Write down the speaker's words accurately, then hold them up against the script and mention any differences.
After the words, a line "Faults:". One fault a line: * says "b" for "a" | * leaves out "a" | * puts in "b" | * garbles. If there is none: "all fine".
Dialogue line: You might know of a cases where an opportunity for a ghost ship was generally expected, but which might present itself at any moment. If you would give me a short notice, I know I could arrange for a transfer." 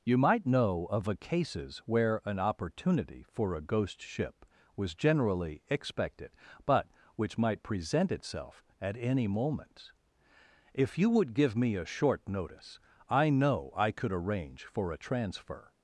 You might know of a cases where an opportunity for a ghost ship was generally expected, but which might present itself at any moment. If you would give me a short notice, I know I could arrange for a transfer."
Faults:
all fine